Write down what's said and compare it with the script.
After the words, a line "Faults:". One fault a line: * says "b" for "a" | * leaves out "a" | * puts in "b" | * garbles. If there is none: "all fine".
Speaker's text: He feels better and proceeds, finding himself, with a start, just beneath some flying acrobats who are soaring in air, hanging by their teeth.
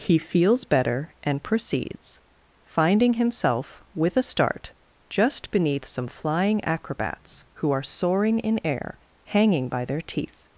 He feels better and proceeds, finding himself, with a start, just beneath some flying acrobats who are soaring in air, hanging by their teeth.
Faults:
all fine